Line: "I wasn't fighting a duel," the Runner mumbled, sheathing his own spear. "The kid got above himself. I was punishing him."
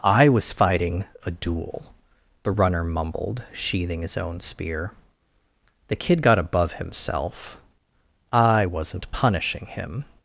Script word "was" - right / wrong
wrong